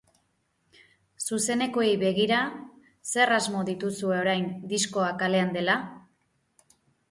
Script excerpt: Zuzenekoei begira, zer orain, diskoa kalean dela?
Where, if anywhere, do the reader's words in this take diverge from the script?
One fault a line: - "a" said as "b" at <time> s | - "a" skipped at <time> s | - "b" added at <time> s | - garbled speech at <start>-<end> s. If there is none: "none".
- "asmo dituzue" added at 3.4 s